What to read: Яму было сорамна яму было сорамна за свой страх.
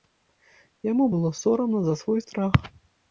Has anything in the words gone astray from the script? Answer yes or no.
yes